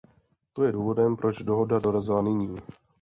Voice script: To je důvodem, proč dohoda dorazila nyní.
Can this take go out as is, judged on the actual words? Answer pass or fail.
pass